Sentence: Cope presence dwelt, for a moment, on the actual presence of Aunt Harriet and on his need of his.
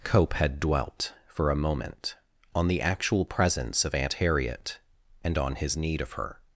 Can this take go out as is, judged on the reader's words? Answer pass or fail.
fail